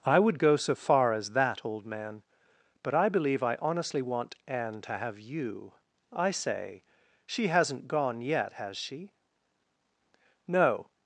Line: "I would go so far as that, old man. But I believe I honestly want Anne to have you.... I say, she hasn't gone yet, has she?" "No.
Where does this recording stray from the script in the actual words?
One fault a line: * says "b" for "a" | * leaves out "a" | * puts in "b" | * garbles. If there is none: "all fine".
all fine